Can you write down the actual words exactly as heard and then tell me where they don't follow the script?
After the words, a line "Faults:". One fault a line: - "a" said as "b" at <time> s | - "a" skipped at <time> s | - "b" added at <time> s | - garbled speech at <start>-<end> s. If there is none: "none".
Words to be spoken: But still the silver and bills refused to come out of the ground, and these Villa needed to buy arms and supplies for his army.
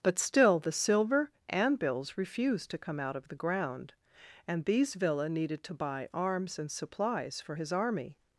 But still the silver and bills refused to come out of the ground, and these Villa needed to buy arms and supplies for his army.
Faults:
none